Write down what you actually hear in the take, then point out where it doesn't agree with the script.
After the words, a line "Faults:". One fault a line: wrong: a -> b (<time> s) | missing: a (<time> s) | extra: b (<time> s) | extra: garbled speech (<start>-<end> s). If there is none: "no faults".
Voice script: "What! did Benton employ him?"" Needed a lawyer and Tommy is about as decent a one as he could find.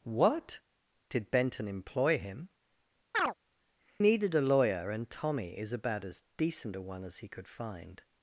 "What! did Benton employ him?"" Needed a lawyer and Tommy is about as decent a one as he could find.
Faults:
no faults